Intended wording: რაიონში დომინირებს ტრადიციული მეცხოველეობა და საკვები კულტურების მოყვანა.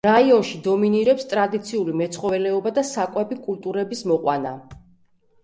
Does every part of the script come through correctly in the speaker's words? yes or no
yes